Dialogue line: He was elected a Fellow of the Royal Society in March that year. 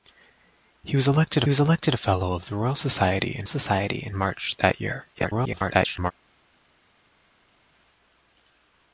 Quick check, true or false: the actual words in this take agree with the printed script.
false